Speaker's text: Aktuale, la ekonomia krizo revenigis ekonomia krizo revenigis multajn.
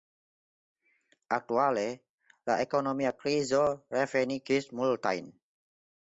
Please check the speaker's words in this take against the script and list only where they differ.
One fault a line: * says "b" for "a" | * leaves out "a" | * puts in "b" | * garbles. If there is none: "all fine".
* leaves out "ekonomia krizo revenigis"